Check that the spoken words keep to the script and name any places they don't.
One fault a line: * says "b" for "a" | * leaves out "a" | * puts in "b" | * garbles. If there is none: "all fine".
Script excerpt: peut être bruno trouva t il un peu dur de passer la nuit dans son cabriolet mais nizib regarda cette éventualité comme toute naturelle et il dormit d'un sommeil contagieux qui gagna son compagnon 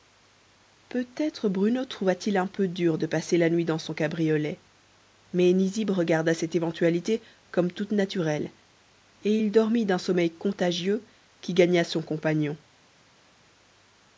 all fine